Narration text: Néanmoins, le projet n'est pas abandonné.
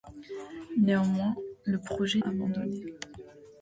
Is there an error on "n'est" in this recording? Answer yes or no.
yes